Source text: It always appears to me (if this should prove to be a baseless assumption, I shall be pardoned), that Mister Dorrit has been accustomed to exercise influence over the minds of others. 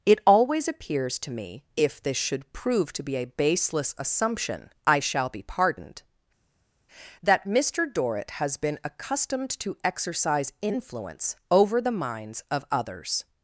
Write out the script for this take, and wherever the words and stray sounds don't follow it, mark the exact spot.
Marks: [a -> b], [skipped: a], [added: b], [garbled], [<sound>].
It always appears to me (if this should prove to be a baseless assumption, I shall be pardoned), that Mister Dorrit has been accustomed to exercise influence over the minds of others.